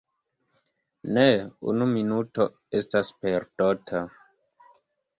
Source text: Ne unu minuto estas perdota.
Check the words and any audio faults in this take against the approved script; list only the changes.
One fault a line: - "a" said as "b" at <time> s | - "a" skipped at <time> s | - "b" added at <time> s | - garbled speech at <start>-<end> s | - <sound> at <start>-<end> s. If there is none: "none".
none